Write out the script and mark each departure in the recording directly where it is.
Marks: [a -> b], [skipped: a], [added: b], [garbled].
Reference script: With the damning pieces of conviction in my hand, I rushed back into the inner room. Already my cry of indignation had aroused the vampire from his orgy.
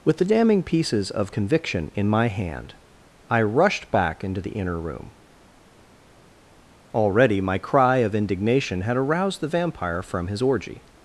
With the damning pieces of conviction in my hand, I rushed back into the inner room. Already my cry of indignation had aroused the vampire from his orgy.